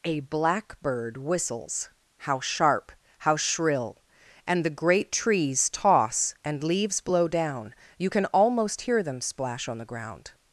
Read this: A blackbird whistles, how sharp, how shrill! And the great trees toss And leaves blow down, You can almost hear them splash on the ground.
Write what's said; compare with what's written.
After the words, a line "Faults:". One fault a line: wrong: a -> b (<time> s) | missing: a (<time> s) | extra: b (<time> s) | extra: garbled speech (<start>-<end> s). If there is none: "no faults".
A blackbird whistles, how sharp, how shrill! And the great trees toss And leaves blow down, You can almost hear them splash on the ground.
Faults:
no faults